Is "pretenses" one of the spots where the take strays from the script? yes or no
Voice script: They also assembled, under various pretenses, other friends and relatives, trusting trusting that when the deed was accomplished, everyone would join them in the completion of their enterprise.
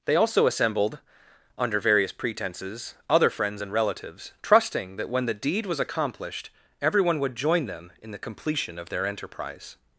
no